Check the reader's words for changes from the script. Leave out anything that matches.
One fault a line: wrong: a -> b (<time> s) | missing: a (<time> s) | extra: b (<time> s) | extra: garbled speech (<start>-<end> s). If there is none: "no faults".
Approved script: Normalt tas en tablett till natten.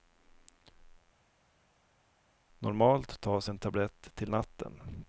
no faults